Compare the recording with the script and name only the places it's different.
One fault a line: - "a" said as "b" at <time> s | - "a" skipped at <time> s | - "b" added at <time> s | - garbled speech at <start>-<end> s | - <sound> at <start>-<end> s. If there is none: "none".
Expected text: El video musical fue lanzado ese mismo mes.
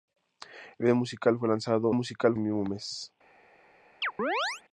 - "ese" said as "musical" at 1.9 s
- chirp at 4.0-4.6 s